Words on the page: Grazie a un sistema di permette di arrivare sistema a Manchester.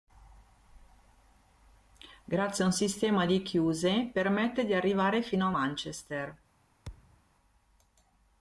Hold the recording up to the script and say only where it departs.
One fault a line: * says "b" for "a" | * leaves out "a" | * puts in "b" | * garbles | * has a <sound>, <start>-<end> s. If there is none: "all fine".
* puts in "chiuse"
* says "fino" for "sistema"
* has a thud, 6.9-7.2 s